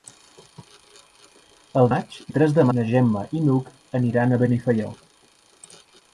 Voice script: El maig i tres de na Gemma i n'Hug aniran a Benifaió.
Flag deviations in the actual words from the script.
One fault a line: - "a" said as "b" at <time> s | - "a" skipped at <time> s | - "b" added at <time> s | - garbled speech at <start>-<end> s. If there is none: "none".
none